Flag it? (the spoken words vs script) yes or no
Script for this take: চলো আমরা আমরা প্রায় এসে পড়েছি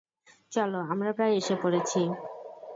yes